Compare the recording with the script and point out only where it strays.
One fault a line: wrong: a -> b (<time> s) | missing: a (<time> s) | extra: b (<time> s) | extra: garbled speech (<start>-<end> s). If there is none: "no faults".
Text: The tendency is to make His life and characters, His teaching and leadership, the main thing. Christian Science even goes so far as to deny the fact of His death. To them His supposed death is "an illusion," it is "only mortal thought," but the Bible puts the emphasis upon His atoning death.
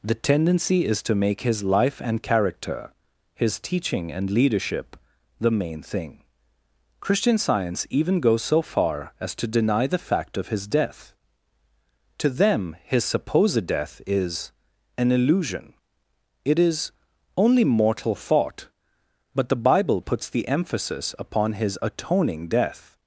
wrong: characters -> character (2.2 s)